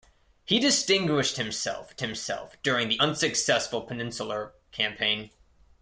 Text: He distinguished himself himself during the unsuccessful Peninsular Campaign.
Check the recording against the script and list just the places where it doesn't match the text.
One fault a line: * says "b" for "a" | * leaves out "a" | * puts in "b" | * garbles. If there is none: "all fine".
all fine